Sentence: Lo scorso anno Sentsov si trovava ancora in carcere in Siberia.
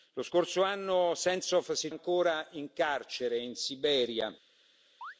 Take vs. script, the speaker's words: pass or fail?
fail